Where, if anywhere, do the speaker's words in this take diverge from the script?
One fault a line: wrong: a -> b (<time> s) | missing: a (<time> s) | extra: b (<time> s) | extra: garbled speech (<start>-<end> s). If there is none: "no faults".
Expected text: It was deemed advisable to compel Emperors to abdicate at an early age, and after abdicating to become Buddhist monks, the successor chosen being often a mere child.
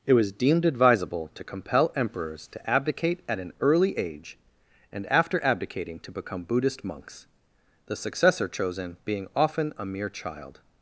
no faults